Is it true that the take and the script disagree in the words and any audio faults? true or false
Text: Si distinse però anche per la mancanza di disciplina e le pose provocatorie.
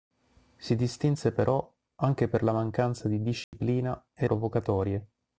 true